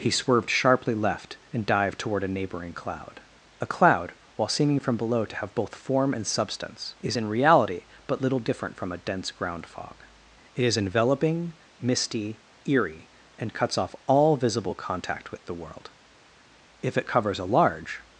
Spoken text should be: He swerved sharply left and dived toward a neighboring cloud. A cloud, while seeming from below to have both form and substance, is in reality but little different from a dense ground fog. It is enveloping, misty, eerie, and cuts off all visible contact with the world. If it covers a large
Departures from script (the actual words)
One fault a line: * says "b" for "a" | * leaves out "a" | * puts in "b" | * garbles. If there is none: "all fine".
all fine